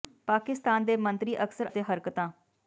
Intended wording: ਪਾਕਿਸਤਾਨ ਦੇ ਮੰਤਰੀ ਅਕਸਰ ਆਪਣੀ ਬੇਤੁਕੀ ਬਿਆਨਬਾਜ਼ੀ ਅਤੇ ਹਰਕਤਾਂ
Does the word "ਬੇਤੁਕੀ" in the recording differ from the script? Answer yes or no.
yes